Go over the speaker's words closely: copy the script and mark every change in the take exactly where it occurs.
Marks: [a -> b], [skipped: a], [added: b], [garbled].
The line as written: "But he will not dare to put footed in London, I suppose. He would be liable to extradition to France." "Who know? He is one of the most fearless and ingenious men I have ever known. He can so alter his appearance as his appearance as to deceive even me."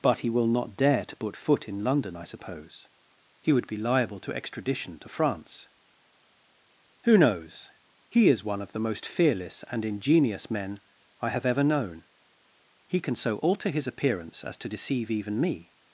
"But he will not dare to put [footed -> foot] in London, I suppose. He would be liable to extradition to France." "Who [know? -> knows] He is one of the most fearless and ingenious men I have ever known. He can so alter his appearance as [skipped: his appearance as] to deceive even me."